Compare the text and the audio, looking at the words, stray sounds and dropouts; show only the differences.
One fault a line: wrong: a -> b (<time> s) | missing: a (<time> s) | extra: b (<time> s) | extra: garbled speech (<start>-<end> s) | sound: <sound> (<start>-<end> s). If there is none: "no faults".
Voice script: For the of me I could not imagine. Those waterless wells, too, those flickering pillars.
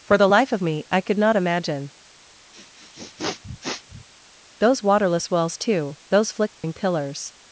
extra: life (0.3 s)
sound: sniff (2.5-4.1 s)
sound: dropout (6.5-6.6 s)